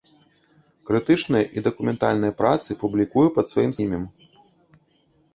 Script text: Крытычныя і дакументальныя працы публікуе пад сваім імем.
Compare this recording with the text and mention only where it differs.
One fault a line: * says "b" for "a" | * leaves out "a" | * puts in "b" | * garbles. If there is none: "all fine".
all fine